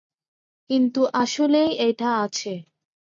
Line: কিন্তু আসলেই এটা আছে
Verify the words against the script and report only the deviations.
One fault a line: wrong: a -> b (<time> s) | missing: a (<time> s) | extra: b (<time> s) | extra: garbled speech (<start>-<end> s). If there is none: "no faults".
no faults